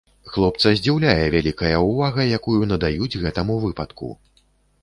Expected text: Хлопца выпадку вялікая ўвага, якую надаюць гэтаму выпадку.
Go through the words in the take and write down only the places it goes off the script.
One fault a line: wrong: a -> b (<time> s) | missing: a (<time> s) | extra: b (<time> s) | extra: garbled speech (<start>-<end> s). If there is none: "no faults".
wrong: выпадку -> здзіўляе (0.8 s)